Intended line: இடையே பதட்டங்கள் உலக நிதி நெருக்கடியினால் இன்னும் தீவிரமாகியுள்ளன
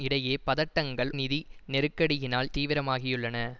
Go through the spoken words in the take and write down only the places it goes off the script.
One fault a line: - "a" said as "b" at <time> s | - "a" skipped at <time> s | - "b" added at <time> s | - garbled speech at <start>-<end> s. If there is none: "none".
- "உலக" skipped at 1.1 s
- "இன்னும்" skipped at 2.5 s